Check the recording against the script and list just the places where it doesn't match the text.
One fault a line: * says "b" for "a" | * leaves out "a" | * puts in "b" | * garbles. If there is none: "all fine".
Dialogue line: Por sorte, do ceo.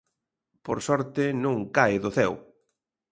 * puts in "non cae"